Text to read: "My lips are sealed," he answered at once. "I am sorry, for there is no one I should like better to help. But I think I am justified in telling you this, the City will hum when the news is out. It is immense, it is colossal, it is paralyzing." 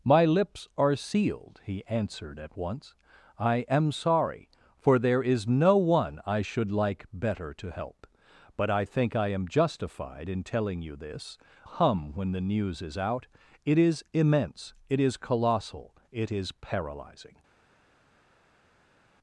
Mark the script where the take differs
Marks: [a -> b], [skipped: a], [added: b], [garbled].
"My lips are sealed," he answered at once. "I am sorry, for there is no one I should like better to help. But I think I am justified in telling you this, [skipped: the City will] hum when the news is out. It is immense, it is colossal, it is paralyzing."